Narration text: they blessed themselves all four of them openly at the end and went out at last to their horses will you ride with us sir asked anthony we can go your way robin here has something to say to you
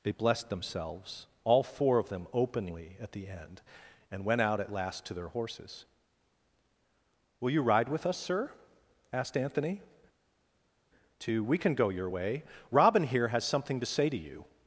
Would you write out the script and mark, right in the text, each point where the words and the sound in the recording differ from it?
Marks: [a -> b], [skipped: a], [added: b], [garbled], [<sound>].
they blessed themselves all four of them openly at the end and went out at last to their horses will you ride with us sir asked anthony [added: to] we can go your way robin here has something to say to you